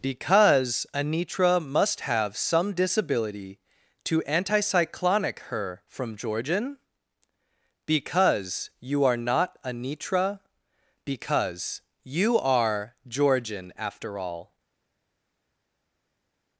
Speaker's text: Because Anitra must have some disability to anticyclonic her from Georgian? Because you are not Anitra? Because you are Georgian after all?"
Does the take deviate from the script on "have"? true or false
false